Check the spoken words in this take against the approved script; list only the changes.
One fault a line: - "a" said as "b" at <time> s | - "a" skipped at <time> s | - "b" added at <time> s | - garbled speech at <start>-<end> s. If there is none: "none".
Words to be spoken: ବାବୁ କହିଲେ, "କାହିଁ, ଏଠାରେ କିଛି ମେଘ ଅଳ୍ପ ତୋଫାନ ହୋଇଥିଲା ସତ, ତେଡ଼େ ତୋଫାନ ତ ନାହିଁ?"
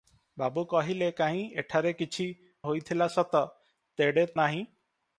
- "ମେଘ ଅଳ୍ପ ତୋଫାନ" skipped at 2.2 s
- "ତୋଫାନ ତ" skipped at 4.2 s